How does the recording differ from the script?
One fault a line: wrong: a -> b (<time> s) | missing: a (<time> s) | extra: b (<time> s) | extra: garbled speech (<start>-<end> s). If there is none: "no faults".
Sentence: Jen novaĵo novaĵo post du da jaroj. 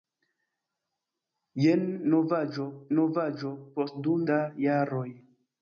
no faults